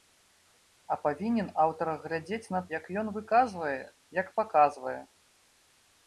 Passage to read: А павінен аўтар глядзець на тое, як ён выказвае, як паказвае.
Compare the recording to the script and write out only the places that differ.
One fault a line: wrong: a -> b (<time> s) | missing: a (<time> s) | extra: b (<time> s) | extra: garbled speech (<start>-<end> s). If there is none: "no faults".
missing: тое (2.6 s)